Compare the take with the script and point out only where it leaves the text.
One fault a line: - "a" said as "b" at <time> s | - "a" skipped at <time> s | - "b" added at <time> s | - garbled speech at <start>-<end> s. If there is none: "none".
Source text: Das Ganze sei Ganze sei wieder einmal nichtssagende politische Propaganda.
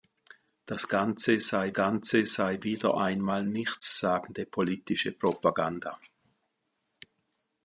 none